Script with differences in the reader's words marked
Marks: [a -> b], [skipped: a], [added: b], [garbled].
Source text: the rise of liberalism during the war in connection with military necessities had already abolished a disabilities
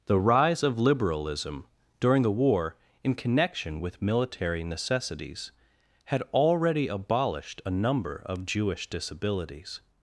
the rise of liberalism during the war in connection with military necessities had already abolished a [added: number of jewish] disabilities